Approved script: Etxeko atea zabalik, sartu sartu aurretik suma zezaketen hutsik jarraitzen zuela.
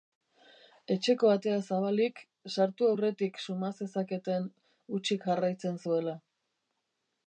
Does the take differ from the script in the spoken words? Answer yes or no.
yes